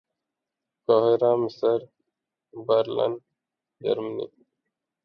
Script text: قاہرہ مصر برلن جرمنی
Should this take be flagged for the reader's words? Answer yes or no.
no